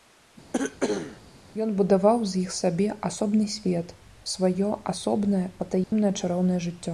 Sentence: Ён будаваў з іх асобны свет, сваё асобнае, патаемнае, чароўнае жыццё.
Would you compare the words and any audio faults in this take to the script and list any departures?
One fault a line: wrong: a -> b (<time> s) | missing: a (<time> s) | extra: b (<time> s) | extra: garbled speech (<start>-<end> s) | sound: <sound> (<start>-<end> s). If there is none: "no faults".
sound: cough (0.5-1.2 s)
extra: сабе (2.6 s)
sound: dropout (5.8-5.9 s)